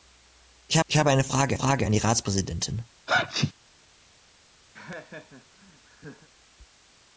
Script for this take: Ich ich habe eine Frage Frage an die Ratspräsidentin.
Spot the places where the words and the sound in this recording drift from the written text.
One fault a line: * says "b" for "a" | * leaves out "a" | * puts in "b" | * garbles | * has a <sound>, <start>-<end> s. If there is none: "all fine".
* has a sneeze, 3.1-3.5 s
* has a laugh, 4.7-6.3 s